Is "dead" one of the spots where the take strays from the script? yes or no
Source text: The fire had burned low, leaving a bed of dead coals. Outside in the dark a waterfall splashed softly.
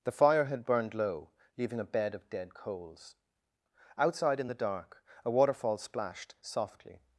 no